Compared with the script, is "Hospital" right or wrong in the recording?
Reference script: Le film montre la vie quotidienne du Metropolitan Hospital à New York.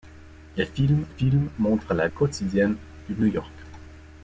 wrong